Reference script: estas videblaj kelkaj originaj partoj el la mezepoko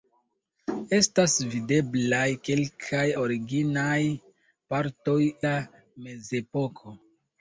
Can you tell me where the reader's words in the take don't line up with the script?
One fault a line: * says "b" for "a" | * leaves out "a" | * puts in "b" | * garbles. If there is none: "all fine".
* leaves out "el"